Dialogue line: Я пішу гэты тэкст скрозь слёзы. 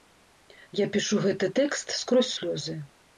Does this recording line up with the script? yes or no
yes